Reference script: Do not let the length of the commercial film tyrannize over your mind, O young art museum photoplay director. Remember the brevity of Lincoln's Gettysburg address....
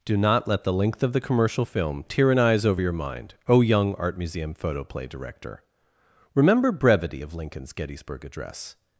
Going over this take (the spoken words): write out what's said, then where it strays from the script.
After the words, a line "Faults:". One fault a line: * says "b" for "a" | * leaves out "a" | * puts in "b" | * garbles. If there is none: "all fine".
Do not let the length of the commercial film tyrannize over your mind, O young art museum photoplay director. Remember brevity of Lincoln's Gettysburg address....
Faults:
* leaves out "the"